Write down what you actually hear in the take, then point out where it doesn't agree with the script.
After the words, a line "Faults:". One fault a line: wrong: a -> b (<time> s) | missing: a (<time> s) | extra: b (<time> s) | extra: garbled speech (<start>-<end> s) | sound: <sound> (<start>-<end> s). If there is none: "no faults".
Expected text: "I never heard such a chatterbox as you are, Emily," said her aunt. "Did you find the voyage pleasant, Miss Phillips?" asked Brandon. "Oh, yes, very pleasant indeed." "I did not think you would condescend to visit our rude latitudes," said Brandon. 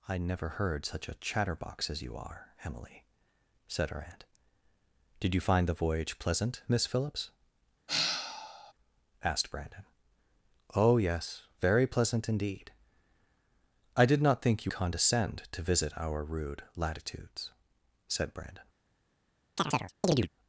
"I never heard such a chatterbox as you are, Emily," said her aunt. "Did you find the voyage pleasant, Miss Phillips?" asked Brandon. "Oh, yes, very pleasant indeed." "I did not think you condescend to visit our rude latitudes," said Brandon.
Faults:
sound: sigh (7.9-8.7 s)
missing: would (14.7 s)
sound: chirp (19.6-20.3 s)